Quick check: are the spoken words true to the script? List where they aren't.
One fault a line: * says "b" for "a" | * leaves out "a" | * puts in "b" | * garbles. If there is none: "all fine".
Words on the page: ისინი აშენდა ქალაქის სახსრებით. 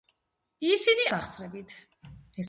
* leaves out "აშენდა ქალაქის"